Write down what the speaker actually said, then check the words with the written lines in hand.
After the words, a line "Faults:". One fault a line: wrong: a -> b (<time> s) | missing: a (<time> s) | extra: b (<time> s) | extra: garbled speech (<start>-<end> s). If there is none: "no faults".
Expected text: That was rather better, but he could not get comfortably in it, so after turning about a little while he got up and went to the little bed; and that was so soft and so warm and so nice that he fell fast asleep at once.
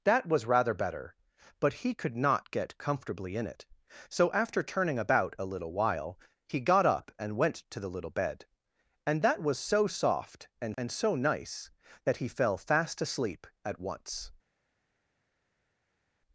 That was rather better, but he could not get comfortably in it, so after turning about a little while he got up and went to the little bed; and that was so soft and and so nice that he fell fast asleep at once.
Faults:
missing: so warm (10.8 s)